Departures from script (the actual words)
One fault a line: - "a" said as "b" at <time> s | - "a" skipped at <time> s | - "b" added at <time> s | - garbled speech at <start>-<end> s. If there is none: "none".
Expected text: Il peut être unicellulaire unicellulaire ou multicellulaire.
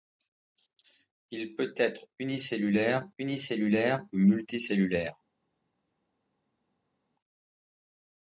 none